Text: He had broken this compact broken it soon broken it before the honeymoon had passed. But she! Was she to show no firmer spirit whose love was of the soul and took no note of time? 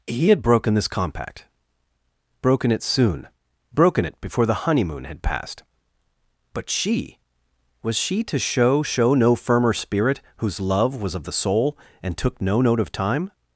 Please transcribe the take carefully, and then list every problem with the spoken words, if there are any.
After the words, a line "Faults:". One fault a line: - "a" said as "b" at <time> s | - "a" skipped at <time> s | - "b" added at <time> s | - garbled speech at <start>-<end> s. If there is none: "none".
He had broken this compact broken it soon broken it before the honeymoon had passed. But she! Was she to show show no firmer spirit whose love was of the soul and took no note of time?
Faults:
- "show" added at 8.8 s